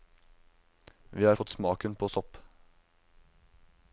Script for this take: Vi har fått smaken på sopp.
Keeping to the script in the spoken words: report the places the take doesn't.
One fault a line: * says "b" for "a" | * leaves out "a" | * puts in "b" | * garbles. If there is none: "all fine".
all fine